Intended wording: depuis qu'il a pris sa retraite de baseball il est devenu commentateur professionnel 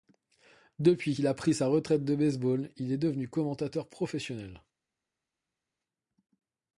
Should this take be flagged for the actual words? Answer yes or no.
no